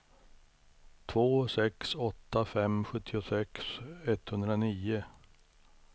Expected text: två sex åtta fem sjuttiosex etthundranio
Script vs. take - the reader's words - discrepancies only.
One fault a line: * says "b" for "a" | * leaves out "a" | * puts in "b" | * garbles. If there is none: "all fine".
all fine